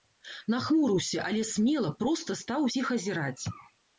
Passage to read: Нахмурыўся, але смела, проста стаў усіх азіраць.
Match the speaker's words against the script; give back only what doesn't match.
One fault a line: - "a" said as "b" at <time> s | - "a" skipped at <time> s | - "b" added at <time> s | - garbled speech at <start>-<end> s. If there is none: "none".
none